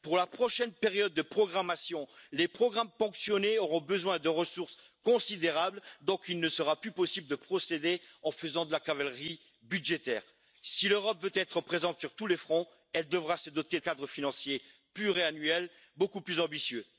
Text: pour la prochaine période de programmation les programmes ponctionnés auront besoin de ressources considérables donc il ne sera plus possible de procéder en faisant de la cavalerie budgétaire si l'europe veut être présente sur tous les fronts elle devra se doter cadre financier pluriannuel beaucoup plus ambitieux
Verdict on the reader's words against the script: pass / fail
pass